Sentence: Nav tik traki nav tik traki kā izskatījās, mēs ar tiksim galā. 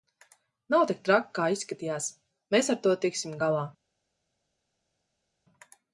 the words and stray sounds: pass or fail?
fail